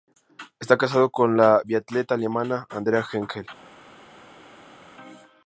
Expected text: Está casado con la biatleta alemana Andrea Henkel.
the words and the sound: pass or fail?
pass